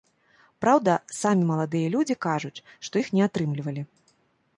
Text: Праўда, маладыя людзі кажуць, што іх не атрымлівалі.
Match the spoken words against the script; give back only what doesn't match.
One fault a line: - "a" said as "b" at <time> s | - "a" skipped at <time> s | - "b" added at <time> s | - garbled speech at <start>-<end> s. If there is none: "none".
- "самі" added at 1.2 s